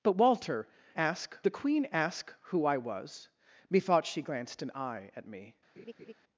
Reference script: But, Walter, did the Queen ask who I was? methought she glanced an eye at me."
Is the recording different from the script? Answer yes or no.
yes